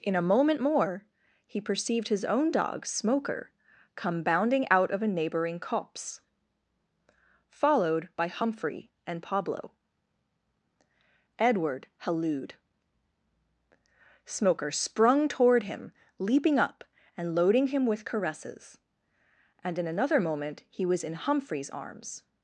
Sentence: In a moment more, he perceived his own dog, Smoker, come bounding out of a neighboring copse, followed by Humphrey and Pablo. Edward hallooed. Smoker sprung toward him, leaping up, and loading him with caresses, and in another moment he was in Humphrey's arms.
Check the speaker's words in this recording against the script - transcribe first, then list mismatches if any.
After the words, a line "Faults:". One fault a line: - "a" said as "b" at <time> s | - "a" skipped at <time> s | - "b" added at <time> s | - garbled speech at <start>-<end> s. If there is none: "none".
In a moment more, he perceived his own dog, Smoker, come bounding out of a neighboring copse, followed by Humphrey and Pablo. Edward hallooed. Smoker sprung toward him, leaping up, and loading him with caresses, and in another moment he was in Humphrey's arms.
Faults:
none